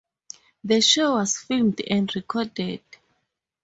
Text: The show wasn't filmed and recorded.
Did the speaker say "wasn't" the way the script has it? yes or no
no